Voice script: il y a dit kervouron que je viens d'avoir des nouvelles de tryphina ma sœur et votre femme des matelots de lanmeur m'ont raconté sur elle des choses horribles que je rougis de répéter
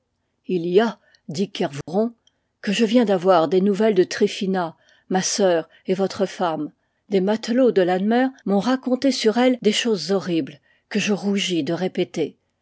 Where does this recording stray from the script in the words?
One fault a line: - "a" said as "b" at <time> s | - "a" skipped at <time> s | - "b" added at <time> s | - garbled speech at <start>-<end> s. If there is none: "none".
none